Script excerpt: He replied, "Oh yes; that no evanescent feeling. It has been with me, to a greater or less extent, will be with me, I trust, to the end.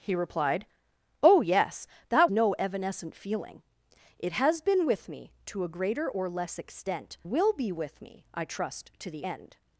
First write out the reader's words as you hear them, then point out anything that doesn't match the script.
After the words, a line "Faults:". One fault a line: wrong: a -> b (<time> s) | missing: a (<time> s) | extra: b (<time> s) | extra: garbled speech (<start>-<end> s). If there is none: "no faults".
He replied, "Oh yes; that no evanescent feeling. It has been with me, to a greater or less extent, will be with me, I trust, to the end.
Faults:
no faults